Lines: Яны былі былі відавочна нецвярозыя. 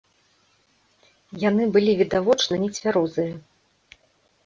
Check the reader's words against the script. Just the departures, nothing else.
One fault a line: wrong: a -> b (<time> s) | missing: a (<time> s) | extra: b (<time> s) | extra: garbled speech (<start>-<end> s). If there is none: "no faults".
missing: былі (1.9 s)